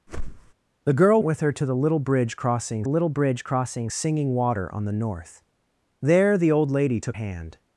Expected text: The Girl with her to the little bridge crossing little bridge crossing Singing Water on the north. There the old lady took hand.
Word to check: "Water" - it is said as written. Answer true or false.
true